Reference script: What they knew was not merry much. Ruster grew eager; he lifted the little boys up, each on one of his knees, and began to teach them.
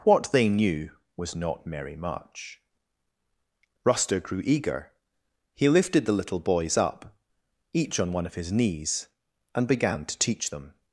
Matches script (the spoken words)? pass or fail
pass